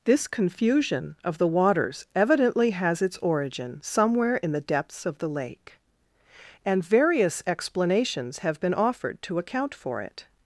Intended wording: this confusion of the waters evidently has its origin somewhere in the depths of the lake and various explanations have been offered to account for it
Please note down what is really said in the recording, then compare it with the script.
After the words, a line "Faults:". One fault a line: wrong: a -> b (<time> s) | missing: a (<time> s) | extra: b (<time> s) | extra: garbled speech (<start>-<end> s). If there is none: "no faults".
this confusion of the waters evidently has its origin somewhere in the depths of the lake and various explanations have been offered to account for it
Faults:
no faults